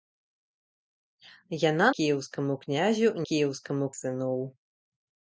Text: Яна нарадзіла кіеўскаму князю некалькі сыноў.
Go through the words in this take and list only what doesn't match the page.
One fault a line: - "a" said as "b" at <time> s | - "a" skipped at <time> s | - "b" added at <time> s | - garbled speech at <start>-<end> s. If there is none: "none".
- "нарадзіла" skipped at 1.9 s
- "некалькі" said as "кіеўскаму" at 3.3 s